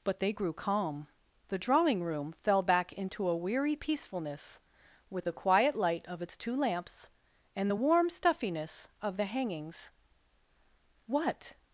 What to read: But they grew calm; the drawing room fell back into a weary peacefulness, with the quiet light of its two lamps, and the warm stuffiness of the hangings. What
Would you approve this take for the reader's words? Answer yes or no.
yes